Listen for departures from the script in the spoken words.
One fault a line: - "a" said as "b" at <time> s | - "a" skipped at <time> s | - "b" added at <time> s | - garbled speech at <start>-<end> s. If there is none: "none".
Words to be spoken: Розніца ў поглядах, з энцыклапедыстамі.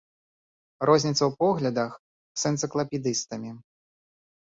none